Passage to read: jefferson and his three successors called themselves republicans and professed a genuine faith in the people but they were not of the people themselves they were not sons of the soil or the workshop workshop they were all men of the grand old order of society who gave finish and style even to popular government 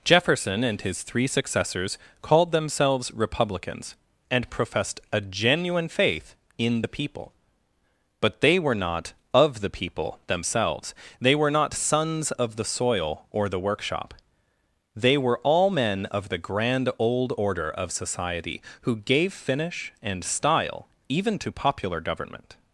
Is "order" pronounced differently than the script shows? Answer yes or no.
no